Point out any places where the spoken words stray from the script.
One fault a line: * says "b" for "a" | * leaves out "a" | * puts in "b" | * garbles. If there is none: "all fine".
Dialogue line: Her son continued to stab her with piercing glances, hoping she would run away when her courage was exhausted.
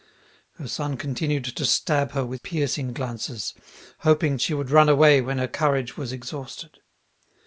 all fine